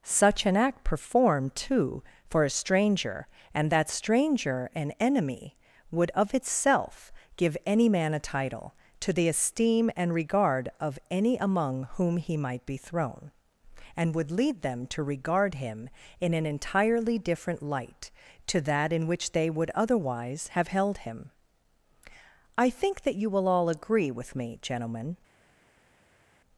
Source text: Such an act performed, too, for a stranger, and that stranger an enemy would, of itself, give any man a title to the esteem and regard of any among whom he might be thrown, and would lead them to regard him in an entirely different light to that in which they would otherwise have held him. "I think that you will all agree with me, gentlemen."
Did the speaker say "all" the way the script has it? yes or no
yes